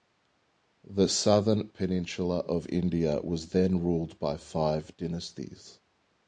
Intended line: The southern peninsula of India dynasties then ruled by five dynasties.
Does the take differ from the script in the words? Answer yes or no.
yes